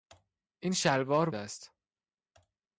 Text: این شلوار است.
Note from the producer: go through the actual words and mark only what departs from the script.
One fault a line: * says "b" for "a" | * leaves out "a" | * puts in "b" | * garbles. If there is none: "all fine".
all fine